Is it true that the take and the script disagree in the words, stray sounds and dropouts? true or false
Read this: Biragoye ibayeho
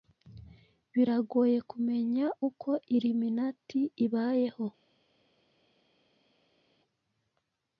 true